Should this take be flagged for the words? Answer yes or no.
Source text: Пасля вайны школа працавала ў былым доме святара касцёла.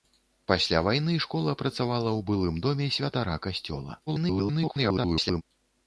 yes